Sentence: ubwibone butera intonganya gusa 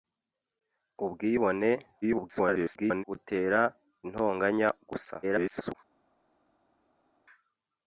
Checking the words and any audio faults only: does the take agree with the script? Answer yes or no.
no